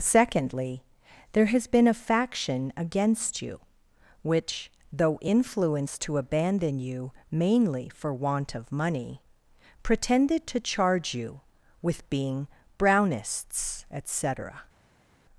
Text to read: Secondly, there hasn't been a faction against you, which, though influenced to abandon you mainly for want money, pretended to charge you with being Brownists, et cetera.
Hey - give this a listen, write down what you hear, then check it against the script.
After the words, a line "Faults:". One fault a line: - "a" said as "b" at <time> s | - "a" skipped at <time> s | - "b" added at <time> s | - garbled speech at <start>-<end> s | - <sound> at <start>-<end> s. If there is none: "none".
Secondly, there has been a faction against you, which, though influenced to abandon you mainly for want of money, pretended to charge you with being Brownists, et cetera.
Faults:
- "hasn't" said as "has" at 1.4 s
- "of" added at 8.5 s